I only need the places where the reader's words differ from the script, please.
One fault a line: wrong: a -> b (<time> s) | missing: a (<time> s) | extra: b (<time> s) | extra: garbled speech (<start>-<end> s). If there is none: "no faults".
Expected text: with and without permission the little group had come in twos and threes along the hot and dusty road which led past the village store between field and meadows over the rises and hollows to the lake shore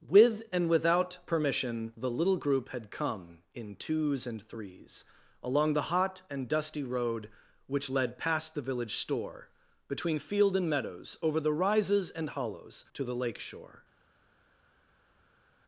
no faults